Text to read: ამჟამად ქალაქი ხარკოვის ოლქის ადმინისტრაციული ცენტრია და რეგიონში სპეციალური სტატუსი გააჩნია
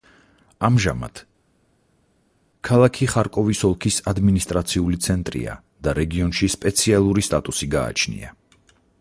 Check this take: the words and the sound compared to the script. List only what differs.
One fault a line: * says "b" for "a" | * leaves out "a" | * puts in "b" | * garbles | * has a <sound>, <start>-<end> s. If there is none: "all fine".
all fine